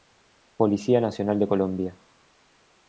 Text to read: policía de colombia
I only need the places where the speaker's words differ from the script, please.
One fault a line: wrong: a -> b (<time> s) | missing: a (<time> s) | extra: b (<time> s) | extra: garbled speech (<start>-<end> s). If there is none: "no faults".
extra: nacional (1.0 s)